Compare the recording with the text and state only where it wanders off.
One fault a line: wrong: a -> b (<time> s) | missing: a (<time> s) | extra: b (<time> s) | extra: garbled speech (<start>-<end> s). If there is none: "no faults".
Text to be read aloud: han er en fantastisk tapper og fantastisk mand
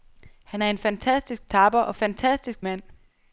no faults